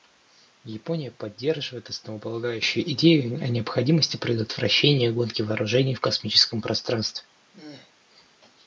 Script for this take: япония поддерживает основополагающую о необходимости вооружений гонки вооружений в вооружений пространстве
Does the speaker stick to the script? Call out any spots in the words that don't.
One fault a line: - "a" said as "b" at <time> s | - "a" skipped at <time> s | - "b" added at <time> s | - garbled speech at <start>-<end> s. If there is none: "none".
- "идею" added at 2.9 s
- "вооружений" said as "предотвращения" at 4.2 s
- "вооружений" said as "космическом" at 6.0 s